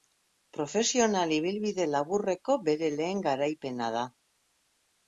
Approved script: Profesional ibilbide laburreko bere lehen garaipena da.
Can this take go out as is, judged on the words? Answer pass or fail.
pass